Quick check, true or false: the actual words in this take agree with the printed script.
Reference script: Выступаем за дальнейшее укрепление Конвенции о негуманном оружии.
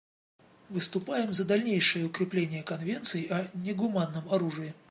true